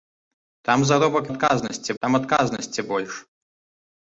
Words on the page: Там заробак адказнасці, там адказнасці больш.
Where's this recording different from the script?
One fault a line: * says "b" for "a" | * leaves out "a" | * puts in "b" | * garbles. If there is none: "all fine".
all fine